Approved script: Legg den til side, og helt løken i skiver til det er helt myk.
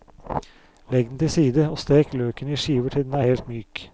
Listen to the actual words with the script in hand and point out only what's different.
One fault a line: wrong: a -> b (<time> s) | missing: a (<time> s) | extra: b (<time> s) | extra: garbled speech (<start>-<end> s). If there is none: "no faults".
wrong: helt -> stek (1.8 s)
wrong: det -> den (3.0 s)